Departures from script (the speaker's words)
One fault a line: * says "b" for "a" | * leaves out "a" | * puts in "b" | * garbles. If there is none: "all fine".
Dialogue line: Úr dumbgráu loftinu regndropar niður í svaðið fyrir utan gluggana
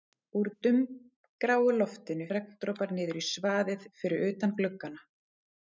all fine